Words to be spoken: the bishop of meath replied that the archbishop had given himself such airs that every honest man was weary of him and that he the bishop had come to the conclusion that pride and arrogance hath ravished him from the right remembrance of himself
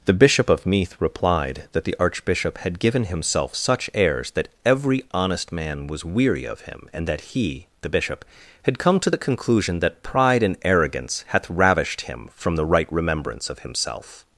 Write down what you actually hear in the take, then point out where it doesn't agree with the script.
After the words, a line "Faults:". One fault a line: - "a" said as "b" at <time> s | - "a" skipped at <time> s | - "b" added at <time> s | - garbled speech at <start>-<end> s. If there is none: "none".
the bishop of meath replied that the archbishop had given himself such airs that every honest man was weary of him and that he the bishop had come to the conclusion that pride and arrogance hath ravished him from the right remembrance of himself
Faults:
none